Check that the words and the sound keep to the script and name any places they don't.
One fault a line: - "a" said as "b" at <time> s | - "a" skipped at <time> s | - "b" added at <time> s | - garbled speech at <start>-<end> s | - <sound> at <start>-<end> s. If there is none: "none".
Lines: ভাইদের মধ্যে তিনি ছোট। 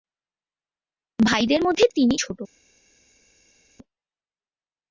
none